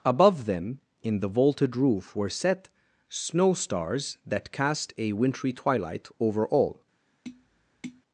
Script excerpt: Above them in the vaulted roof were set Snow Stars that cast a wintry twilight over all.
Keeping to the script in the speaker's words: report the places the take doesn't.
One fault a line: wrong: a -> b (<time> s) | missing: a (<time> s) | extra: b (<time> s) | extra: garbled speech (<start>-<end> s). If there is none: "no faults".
no faults